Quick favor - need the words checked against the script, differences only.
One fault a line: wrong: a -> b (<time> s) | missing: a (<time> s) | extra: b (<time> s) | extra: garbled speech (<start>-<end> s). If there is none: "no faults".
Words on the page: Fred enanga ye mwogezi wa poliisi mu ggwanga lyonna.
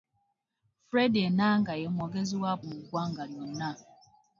missing: poliisi (2.5 s)